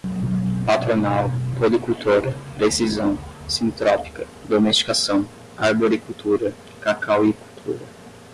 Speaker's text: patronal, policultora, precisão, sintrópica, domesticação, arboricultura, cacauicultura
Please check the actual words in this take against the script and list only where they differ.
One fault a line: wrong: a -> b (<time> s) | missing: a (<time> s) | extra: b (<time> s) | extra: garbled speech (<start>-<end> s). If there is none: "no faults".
no faults